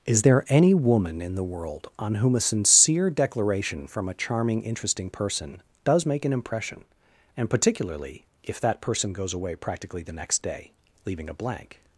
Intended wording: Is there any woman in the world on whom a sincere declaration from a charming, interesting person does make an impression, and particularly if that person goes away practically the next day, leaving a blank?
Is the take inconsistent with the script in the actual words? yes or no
no